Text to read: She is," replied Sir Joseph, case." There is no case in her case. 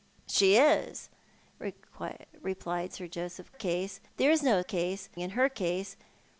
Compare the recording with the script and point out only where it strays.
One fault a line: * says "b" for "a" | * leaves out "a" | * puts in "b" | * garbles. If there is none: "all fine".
all fine